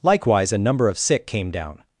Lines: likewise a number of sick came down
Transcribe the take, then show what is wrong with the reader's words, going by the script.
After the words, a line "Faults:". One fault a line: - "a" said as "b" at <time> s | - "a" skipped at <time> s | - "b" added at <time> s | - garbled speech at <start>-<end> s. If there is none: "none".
likewise a number of sick came down
Faults:
none